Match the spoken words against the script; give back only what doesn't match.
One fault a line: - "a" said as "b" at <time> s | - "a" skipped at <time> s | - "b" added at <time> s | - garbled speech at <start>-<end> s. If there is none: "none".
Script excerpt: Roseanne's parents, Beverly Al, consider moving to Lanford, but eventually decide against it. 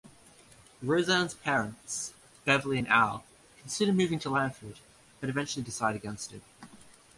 - "and" added at 2.8 s